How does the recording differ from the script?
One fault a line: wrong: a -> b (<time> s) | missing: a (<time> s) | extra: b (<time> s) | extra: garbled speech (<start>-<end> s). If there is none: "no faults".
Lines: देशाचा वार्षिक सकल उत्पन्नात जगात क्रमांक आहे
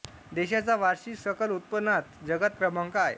no faults